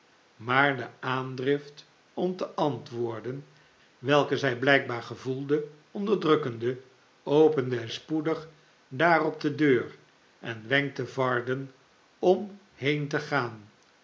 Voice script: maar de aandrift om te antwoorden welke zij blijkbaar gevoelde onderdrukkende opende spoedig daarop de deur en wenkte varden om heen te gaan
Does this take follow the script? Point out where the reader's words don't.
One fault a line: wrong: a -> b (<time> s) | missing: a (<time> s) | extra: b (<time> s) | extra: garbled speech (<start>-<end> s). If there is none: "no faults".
no faults